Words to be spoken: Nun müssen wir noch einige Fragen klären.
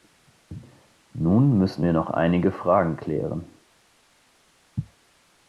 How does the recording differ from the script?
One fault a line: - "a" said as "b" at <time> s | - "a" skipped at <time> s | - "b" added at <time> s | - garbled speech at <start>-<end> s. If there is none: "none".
none